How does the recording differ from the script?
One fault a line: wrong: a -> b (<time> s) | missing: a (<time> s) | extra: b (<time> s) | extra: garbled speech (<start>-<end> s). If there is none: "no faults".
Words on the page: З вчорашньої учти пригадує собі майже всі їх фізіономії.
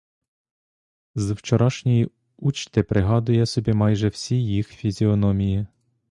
no faults